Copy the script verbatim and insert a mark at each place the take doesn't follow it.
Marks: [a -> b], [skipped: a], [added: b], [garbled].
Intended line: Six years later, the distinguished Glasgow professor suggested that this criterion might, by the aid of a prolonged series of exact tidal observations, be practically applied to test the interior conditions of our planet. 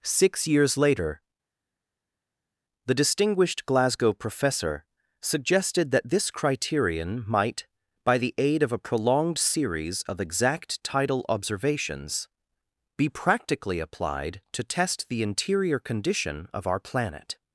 Six years later, the distinguished Glasgow professor suggested that this criterion might, by the aid of a prolonged series of exact tidal observations, be practically applied to test the interior [conditions -> condition] of our planet.